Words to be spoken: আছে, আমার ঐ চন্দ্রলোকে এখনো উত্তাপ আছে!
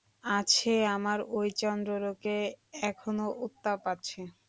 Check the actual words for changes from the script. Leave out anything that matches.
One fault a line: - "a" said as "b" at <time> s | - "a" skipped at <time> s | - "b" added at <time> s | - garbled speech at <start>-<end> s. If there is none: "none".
none